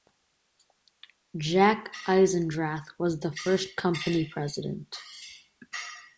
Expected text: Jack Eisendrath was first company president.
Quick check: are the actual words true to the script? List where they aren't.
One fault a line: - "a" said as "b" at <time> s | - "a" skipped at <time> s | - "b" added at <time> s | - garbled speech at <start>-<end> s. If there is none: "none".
- "the" added at 3.2 s